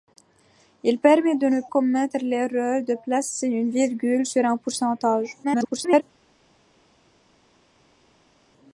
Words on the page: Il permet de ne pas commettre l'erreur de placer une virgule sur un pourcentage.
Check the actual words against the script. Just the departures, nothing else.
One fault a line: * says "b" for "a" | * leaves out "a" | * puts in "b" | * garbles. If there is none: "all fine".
* leaves out "pas"
* garbles